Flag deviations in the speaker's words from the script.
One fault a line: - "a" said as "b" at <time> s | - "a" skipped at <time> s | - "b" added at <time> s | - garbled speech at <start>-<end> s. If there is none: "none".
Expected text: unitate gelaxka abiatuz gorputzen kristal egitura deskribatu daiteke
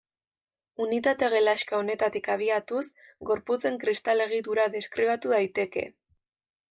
- "honetatik" added at 1.8 s